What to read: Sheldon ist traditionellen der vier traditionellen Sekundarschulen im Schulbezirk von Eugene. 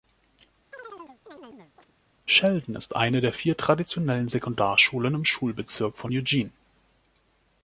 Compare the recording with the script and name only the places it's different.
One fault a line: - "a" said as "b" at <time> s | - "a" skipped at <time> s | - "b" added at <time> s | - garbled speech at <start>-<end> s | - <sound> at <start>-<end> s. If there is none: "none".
- chirp at 0.7-1.9 s
- "traditionellen" said as "eine" at 2.9 s